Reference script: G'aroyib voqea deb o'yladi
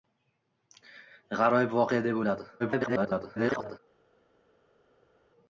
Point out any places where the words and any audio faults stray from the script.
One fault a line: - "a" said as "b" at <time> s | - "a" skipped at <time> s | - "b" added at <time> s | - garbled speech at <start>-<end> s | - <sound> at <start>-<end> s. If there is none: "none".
- garbled speech at 2.6-3.8 s